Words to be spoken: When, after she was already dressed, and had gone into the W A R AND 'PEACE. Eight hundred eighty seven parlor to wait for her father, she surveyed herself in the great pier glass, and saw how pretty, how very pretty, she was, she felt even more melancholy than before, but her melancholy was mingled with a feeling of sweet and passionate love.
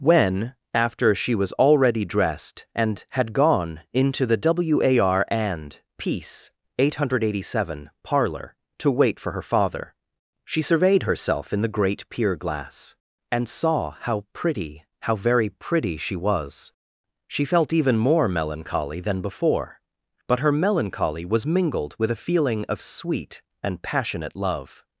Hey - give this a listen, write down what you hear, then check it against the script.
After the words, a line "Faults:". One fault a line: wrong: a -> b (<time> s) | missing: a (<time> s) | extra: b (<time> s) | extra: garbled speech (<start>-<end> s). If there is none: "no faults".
When, after she was already dressed, and had gone into the W A R AND 'PEACE. Eight hundred eighty seven parlor to wait for her father, she surveyed herself in the great pier glass, and saw how pretty, how very pretty, she was, she felt even more melancholy than before, but her melancholy was mingled with a feeling of sweet and passionate love.
Faults:
no faults